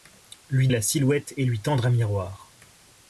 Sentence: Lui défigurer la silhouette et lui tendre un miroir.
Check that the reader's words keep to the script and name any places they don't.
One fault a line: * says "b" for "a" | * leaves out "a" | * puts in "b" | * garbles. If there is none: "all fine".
* leaves out "défigurer"